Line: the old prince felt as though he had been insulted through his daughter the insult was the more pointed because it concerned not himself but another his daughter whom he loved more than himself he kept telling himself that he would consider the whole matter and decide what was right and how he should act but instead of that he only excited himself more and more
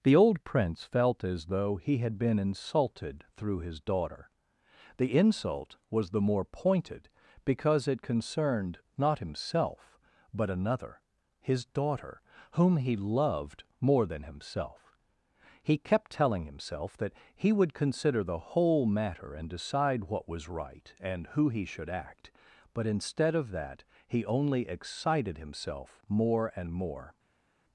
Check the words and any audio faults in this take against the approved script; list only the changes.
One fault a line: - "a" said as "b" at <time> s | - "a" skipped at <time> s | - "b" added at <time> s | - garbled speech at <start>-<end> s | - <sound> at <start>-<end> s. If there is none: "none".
- "how" said as "who" at 21.3 s